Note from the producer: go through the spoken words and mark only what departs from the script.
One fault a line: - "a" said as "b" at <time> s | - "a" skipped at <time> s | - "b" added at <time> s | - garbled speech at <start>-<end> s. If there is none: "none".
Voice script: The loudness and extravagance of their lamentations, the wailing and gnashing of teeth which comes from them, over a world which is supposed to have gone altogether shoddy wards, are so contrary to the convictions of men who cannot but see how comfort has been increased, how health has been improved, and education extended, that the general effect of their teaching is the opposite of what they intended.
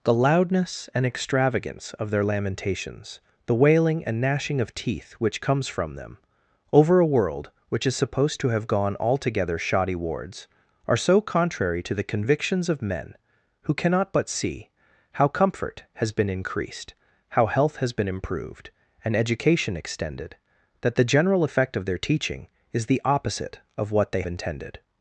none